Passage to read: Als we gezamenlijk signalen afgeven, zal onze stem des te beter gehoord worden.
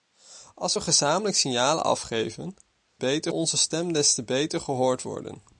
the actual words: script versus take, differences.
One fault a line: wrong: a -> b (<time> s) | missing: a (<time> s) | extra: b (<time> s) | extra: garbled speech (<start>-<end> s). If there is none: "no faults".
wrong: zal -> beter (3.0 s)